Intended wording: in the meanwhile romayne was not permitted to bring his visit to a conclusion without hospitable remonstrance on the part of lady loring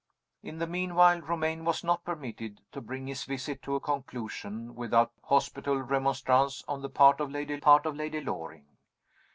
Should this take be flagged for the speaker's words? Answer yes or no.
yes